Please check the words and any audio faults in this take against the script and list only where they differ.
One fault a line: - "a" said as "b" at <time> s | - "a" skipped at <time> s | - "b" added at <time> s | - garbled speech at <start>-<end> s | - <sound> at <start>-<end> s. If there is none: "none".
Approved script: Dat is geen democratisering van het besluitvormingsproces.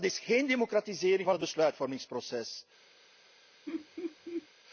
- laugh at 3.7-4.5 s